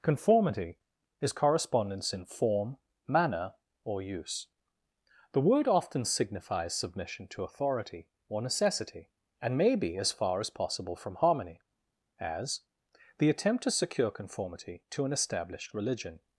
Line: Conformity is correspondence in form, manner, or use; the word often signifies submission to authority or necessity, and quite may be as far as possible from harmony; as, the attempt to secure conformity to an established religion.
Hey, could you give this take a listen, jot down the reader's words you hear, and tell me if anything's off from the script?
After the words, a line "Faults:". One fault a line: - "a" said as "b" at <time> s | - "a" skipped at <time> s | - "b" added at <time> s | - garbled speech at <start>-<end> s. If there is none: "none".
Conformity is correspondence in form, manner, or use; the word often signifies submission to authority or necessity, and may be as far as possible from harmony; as, the attempt to secure conformity to an established religion.
Faults:
- "quite" skipped at 9.6 s